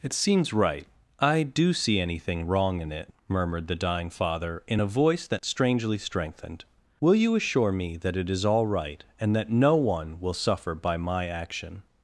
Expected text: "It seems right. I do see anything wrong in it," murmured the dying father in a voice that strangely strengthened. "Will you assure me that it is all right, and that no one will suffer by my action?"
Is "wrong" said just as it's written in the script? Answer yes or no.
yes